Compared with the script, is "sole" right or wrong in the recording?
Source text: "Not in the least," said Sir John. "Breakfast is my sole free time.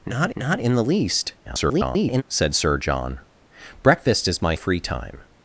wrong